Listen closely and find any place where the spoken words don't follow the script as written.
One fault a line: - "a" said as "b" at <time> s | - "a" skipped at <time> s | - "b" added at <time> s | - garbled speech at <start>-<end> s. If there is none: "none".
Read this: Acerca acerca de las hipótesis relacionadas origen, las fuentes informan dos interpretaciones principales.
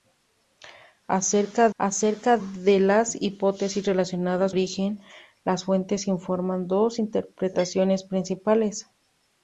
none